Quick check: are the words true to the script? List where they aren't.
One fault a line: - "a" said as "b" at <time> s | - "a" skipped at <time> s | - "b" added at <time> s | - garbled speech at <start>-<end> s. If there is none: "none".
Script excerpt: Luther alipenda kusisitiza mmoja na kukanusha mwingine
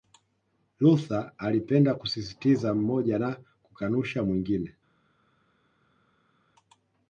none